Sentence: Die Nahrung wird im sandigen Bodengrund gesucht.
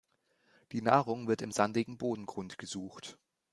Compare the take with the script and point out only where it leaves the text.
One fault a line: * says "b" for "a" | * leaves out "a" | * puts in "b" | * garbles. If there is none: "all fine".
all fine